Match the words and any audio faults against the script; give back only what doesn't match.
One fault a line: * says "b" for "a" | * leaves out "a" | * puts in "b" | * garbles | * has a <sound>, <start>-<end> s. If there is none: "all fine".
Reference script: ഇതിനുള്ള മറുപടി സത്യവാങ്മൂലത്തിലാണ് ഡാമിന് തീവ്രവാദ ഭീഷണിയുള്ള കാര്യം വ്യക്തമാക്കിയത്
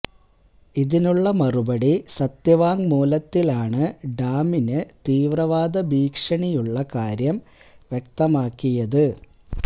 all fine